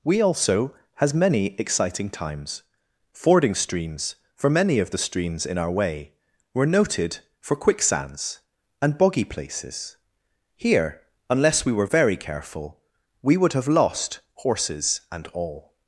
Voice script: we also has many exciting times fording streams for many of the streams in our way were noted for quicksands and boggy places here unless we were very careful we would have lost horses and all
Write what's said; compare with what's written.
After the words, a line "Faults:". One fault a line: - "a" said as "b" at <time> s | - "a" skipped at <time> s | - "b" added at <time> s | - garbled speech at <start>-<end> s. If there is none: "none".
we also has many exciting times fording streams for many of the streams in our way were noted for quicksands and boggy places here unless we were very careful we would have lost horses and all
Faults:
none